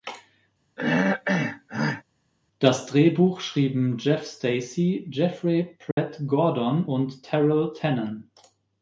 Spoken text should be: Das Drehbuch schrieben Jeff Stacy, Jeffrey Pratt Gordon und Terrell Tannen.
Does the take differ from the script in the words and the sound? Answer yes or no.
yes